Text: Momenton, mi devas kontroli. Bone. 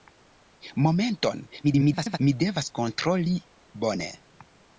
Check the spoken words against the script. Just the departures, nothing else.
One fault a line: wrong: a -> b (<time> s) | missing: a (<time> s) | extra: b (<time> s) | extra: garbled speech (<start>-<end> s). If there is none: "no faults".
extra: garbled speech (1.6-2.2 s)